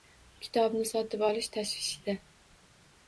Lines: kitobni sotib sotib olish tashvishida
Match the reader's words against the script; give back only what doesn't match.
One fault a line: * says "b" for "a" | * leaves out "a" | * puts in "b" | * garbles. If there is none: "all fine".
* leaves out "sotib"